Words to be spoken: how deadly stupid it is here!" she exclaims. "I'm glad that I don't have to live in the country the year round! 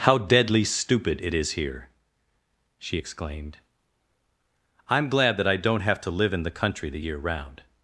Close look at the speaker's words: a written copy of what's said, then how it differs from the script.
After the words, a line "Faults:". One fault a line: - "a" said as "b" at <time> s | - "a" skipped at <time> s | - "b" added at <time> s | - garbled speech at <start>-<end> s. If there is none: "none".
how deadly stupid it is here!" she exclaimed. "I'm glad that I don't have to live in the country the year round!
Faults:
- "exclaims" said as "exclaimed" at 2.9 s